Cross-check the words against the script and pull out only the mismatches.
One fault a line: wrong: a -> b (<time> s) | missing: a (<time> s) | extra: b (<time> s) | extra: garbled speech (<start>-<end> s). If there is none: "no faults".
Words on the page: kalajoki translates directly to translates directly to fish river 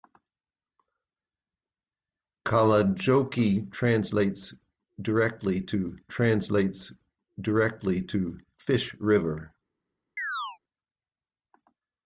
no faults